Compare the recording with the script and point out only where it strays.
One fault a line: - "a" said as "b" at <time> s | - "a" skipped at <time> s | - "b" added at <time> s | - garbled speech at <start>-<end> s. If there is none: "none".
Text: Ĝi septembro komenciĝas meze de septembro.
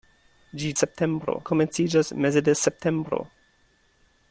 none